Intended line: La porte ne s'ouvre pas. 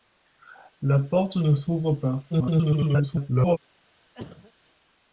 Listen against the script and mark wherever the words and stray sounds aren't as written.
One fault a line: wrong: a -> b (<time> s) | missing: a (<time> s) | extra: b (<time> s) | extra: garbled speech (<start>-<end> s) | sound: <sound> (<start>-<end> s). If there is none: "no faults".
extra: garbled speech (2.3-3.6 s)
sound: cough (4.1-4.5 s)